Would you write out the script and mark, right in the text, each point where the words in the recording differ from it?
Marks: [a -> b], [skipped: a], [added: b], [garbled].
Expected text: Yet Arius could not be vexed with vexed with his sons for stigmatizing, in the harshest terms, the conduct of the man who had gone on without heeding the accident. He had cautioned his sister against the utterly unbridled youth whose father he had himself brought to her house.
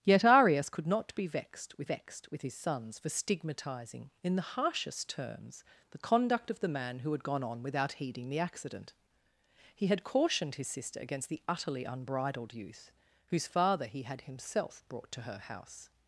Yet Arius could not be vexed with vexed with his sons for stigmatizing, in the harshest terms, the conduct of the man who had gone on without heeding the accident. He had cautioned his sister against the utterly unbridled youth whose father he had himself brought to her house.